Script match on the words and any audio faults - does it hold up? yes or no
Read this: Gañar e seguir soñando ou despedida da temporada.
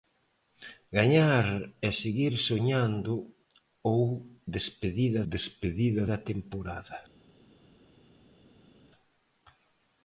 no